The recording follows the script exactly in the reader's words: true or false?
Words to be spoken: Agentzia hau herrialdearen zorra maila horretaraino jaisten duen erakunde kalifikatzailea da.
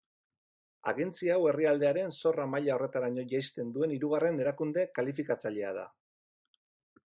false